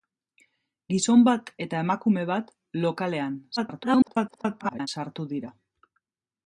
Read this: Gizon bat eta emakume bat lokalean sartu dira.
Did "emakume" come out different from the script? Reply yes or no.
no